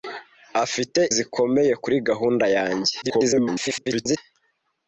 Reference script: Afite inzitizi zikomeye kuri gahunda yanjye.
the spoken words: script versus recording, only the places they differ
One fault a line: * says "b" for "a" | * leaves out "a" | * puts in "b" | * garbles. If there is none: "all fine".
* leaves out "inzitizi"
* garbles